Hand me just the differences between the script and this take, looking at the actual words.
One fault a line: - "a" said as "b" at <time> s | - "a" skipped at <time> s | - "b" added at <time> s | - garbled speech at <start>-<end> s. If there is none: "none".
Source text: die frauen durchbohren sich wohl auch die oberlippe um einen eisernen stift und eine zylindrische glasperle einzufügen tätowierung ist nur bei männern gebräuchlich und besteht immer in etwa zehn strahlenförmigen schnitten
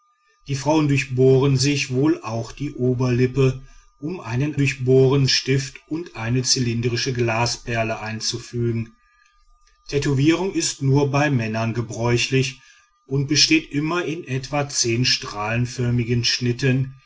- "eisernen" said as "durchbohren" at 4.6 s